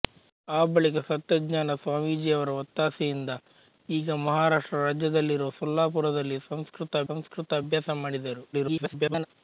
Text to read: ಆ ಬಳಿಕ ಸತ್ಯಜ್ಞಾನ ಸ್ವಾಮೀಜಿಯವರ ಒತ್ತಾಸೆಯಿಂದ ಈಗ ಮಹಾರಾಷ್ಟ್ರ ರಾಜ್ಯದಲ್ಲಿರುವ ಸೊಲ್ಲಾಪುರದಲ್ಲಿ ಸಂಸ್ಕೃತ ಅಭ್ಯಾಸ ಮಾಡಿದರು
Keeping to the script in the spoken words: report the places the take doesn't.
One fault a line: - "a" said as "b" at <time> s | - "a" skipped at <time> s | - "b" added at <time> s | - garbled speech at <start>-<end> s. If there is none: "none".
- "ಸಂಸ್ಕೃತ" added at 7.1 s
- garbled speech at 8.5-9.3 s